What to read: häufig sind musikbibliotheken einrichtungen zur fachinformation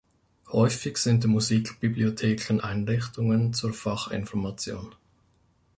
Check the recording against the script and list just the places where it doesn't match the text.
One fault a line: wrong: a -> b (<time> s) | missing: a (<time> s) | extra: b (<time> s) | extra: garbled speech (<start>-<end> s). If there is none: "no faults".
no faults